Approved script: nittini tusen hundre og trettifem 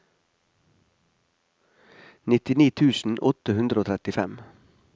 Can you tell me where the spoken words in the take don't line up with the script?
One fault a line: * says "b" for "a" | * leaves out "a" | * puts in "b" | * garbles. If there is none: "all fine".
* puts in "åtte"